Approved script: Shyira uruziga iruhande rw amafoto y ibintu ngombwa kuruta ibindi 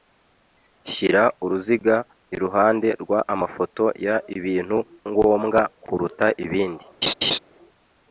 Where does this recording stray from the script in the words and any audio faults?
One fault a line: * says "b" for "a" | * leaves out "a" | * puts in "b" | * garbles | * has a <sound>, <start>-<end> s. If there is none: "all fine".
* has a laugh, 7.0-7.4 s